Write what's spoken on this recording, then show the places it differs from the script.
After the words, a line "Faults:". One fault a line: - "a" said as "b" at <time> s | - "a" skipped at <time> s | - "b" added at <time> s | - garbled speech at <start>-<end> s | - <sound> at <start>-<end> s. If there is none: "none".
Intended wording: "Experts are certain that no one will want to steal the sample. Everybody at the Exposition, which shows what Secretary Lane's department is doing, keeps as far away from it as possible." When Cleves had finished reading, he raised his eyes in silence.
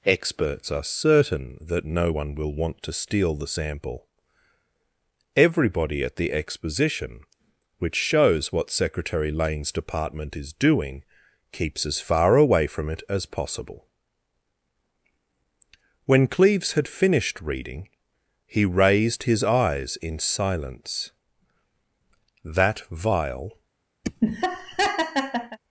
"Experts are certain that no one will want to steal the sample. Everybody at the Exposition, which shows what Secretary Lane's department is doing, keeps as far away from it as possible." When Cleves had finished reading, he raised his eyes in silence. "That vial
Faults:
- "That vial" added at 22.4 s
- laugh at 24.0-25.6 s